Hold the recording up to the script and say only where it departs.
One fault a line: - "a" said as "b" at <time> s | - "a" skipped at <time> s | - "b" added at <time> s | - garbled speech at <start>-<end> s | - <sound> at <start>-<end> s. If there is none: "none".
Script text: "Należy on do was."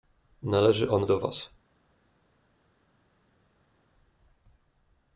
none